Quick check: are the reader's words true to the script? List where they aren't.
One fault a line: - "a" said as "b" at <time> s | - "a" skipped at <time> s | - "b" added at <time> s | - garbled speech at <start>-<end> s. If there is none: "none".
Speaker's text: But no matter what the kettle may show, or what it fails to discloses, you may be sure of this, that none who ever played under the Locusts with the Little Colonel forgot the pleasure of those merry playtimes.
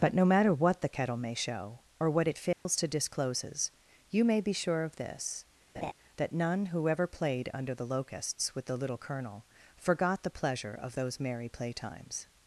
none